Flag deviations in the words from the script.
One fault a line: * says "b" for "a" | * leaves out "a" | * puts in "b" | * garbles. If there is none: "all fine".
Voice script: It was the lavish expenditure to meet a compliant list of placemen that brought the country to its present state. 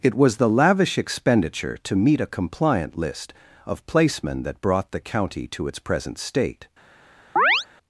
* says "county" for "country"